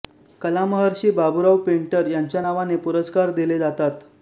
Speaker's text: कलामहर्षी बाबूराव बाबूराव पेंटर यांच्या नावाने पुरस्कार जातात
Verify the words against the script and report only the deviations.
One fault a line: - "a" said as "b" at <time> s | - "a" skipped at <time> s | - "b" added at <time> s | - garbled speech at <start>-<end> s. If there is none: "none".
- "बाबूराव" skipped at 1.6 s
- "दिले" added at 3.3 s